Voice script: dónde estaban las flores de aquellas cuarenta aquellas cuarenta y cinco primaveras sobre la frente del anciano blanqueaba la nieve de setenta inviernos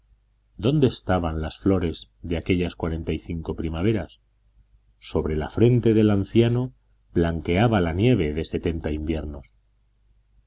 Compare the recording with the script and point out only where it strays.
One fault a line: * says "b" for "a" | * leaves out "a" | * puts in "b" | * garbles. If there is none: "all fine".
* leaves out "aquellas cuarenta"